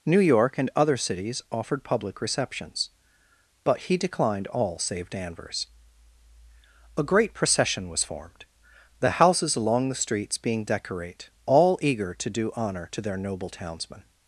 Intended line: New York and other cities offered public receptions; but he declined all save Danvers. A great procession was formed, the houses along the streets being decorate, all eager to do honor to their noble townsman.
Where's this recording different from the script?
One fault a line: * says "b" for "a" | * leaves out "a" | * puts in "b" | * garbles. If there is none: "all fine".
all fine